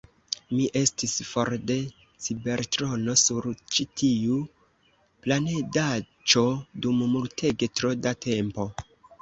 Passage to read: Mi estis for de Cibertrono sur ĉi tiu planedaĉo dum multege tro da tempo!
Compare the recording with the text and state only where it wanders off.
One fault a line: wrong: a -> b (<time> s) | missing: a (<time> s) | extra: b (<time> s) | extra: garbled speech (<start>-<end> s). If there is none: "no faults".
no faults